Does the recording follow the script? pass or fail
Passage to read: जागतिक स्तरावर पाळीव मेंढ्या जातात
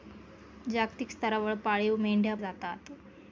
pass